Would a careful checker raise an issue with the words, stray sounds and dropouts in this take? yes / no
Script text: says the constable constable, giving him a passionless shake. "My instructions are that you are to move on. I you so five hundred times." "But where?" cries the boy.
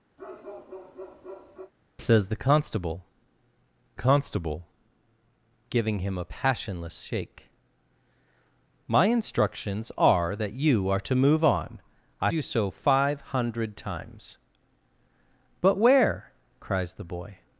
yes